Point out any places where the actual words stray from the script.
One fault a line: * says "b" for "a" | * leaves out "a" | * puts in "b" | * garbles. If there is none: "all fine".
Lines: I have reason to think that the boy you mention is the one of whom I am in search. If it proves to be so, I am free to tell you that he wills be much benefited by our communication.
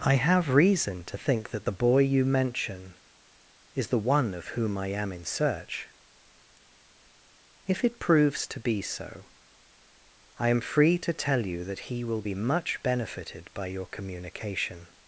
* says "will" for "wills"
* says "your" for "our"